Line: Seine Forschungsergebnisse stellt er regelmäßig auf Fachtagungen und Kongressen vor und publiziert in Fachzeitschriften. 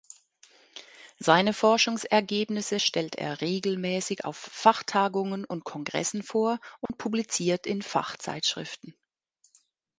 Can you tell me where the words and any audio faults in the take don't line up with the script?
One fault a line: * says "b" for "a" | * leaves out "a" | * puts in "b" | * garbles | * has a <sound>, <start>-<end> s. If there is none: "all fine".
* has a dropout, 6.9-6.9 s